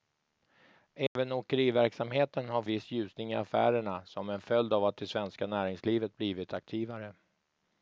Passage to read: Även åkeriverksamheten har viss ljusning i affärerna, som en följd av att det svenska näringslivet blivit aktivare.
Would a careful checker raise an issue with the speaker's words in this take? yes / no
no